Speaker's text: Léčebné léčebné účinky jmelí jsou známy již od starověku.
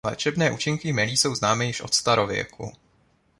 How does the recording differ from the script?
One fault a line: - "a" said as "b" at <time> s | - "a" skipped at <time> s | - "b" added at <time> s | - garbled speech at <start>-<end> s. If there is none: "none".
- "léčebné" skipped at 0.5 s